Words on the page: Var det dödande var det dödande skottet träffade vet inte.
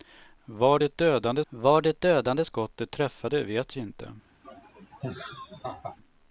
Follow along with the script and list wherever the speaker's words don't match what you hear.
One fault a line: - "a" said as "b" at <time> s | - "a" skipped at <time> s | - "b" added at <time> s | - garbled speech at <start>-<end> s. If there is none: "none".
none